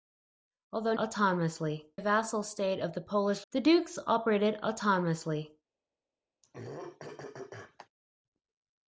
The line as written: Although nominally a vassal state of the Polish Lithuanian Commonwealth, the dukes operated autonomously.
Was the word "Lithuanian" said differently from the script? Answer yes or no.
yes